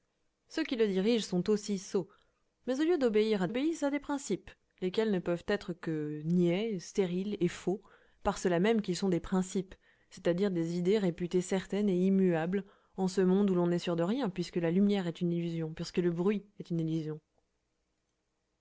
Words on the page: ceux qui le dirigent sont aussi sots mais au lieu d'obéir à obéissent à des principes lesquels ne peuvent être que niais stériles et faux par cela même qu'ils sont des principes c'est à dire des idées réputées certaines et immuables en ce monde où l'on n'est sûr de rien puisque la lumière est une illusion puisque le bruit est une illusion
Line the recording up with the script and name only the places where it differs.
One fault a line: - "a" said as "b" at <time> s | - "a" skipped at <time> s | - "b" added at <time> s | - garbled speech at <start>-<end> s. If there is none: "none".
none